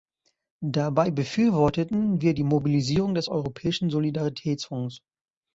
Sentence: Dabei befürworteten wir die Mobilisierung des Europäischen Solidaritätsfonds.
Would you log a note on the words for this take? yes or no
no